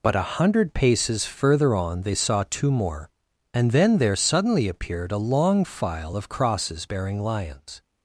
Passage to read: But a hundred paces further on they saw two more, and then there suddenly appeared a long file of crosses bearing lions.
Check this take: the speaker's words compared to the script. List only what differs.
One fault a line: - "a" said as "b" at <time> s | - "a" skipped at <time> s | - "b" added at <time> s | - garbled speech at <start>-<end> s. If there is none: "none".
none